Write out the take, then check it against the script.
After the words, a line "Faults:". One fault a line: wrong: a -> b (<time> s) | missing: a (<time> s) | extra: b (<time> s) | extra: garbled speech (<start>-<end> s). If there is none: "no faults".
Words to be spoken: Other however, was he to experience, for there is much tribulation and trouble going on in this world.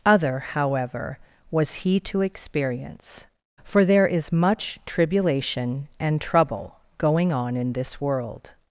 Other however, was he to experience, for there is much tribulation and trouble going on in this world.
Faults:
no faults